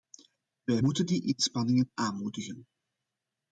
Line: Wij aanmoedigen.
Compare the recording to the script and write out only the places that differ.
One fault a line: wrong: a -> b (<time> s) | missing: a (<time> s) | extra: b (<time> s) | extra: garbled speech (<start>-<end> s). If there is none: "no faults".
extra: moeten die inspanningen (0.8 s)